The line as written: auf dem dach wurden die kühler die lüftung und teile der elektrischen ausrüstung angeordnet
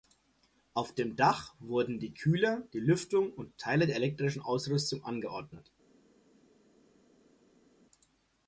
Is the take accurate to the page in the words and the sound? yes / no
yes